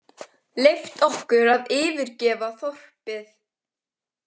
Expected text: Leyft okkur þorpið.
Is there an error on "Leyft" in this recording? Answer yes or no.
no